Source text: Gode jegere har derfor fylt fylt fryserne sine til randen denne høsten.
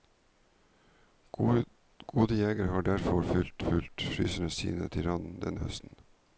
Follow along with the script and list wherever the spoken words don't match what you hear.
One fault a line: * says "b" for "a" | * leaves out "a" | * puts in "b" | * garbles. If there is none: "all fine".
all fine